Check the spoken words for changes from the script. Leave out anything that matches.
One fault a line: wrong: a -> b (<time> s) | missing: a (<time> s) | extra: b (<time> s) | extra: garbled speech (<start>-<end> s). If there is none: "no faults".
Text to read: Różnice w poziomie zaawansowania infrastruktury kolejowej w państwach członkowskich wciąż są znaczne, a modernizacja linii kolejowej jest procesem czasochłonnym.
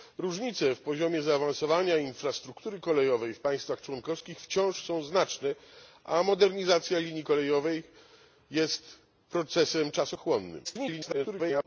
extra: garbled speech (10.6-11.6 s)